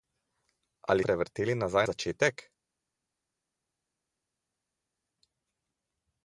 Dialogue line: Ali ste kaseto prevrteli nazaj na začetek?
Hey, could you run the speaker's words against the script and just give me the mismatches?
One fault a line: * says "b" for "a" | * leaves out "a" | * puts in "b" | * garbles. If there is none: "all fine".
* leaves out "ste kaseto"
* leaves out "na"